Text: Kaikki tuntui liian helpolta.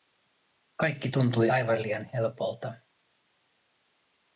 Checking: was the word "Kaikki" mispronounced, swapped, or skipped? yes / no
no